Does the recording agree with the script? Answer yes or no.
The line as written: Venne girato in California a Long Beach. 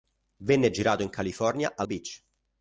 no